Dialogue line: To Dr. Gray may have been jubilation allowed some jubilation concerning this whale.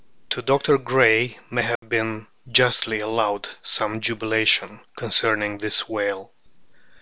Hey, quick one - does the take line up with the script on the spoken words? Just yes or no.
no